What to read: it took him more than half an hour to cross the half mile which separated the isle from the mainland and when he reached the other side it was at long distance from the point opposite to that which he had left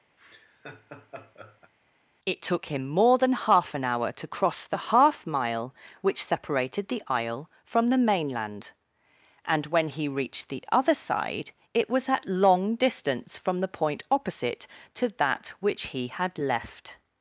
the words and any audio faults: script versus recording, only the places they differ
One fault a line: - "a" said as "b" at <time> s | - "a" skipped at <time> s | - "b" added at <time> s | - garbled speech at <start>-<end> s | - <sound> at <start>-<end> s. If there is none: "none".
- laugh at 0.2-1.7 s